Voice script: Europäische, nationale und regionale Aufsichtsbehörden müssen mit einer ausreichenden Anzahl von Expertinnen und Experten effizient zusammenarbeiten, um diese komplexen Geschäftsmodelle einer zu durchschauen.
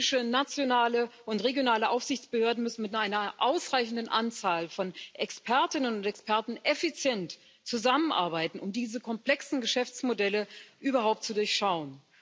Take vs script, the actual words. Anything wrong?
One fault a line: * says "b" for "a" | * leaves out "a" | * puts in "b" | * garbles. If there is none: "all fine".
* says "überhaupt" for "einer"